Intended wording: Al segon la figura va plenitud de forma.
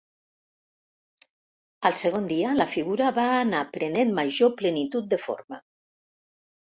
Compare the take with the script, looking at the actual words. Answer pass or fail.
fail